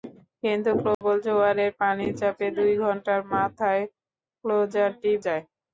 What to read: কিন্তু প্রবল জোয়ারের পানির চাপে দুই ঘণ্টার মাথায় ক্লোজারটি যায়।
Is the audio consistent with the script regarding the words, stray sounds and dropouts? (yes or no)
no